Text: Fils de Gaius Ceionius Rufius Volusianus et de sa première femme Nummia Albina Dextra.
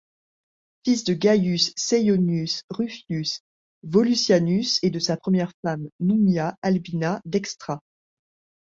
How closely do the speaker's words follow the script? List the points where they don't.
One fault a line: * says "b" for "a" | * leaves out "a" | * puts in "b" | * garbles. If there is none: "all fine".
all fine